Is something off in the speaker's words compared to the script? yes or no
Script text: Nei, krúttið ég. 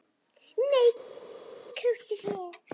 no